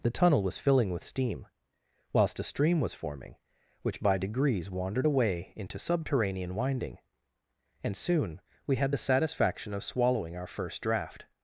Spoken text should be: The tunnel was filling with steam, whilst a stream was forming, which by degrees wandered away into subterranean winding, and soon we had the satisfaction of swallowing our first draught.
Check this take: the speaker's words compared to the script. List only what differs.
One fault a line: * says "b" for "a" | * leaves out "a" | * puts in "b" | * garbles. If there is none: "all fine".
all fine